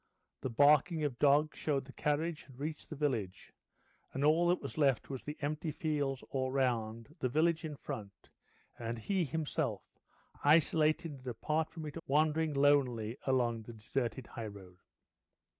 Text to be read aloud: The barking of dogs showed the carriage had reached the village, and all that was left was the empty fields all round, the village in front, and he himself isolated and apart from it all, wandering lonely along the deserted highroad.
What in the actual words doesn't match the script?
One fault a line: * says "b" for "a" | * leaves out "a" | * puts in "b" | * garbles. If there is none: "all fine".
* leaves out "all"